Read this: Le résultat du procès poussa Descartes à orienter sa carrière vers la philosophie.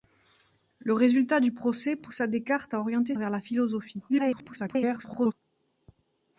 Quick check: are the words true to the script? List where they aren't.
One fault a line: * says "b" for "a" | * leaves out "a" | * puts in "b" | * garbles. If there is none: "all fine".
* leaves out "sa carrière"
* garbles